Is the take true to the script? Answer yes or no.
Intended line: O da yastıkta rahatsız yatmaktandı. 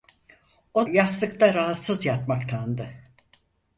no